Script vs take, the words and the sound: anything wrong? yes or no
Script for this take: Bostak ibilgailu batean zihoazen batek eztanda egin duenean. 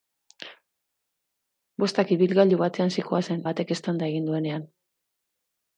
no